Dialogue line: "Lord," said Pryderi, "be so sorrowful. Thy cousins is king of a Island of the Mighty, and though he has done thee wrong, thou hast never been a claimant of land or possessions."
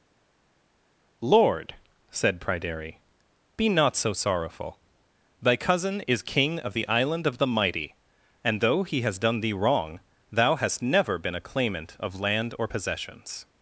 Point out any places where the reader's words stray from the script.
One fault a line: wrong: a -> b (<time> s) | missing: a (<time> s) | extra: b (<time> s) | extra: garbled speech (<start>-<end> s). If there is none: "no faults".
extra: not (3.7 s)
wrong: cousins -> cousin (5.6 s)
wrong: a -> the (6.7 s)